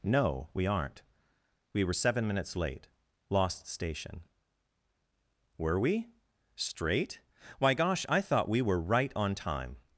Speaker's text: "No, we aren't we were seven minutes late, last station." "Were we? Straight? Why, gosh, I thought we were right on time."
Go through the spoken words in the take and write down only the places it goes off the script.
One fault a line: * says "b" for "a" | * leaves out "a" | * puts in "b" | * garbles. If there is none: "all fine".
* says "lost" for "last"